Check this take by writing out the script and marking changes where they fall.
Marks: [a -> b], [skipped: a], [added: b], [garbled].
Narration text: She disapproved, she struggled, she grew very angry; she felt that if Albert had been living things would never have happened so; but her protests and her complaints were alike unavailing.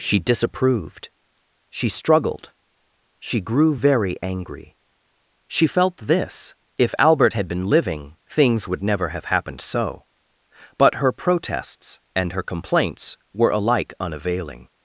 She disapproved, she struggled, she grew very angry; she felt [that -> this] if Albert had been living things would never have happened so; but her protests and her complaints were alike unavailing.